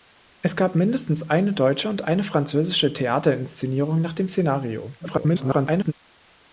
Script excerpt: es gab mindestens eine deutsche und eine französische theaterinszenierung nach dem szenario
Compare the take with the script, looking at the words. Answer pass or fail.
fail